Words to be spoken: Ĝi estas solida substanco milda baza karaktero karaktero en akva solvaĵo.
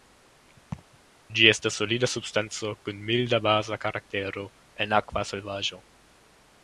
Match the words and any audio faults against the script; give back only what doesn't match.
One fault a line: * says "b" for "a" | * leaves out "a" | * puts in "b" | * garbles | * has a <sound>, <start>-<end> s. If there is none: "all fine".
* has a laugh, 0.7-1.0 s
* puts in "kun"
* leaves out "karaktero"